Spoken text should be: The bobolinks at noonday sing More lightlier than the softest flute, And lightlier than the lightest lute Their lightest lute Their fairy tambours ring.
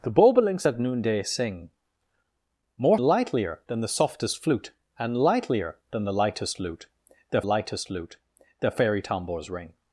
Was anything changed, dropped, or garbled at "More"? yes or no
no